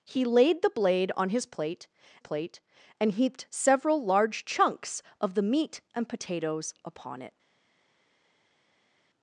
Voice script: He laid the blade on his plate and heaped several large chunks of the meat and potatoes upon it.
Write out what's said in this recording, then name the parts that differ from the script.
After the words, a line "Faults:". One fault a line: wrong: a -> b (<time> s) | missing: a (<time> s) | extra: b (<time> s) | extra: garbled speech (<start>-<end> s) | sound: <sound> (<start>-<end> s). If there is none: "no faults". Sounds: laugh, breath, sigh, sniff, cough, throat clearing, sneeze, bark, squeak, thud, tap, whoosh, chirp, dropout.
He laid the blade on his plate plate and heaped several large chunks of the meat and potatoes upon it.
Faults:
extra: plate (2.2 s)